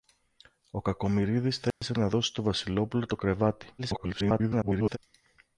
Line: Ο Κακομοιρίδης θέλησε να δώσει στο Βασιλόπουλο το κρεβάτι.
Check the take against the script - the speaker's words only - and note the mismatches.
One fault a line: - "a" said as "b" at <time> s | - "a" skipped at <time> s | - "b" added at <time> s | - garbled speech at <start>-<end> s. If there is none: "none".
- garbled speech at 3.8-5.0 s